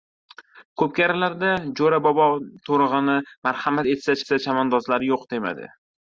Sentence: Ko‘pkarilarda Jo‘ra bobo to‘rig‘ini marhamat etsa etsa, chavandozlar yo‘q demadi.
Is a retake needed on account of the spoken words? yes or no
no